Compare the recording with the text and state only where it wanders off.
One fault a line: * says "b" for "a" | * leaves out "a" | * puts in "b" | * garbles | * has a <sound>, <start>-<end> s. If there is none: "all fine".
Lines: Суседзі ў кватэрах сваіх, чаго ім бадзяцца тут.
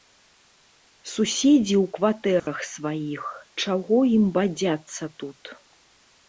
* has a dropout, 2.4-2.5 s